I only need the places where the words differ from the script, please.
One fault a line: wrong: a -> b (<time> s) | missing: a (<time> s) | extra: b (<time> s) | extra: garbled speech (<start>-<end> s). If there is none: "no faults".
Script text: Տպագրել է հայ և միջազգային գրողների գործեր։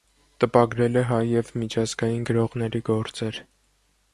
no faults